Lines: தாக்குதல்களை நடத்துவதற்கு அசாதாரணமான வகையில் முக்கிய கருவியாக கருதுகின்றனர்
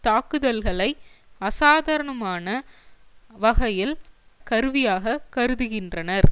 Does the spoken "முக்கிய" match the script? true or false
false